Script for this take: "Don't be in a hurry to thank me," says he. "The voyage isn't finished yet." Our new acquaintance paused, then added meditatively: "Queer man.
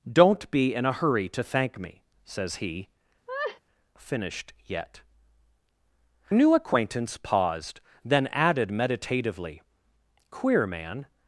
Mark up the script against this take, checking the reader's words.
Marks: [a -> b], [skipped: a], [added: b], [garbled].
"Don't be in a hurry to thank me," says he. [skipped: "The voyage isn't] finished yet." [skipped: Our] new acquaintance paused, then added meditatively: "Queer man.